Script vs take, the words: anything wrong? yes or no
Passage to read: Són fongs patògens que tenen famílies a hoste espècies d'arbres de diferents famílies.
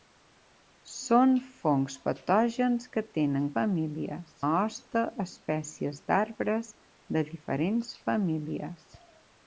no